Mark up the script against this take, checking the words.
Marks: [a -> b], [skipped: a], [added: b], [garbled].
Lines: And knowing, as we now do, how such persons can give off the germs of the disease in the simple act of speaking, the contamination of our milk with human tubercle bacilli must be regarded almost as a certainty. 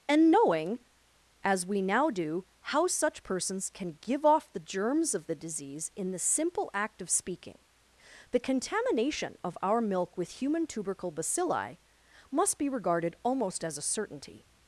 And knowing, as we now do, how such persons can give off the germs of the disease in the simple act of speaking, the contamination of our milk with human tubercle bacilli must be regarded almost as a certainty.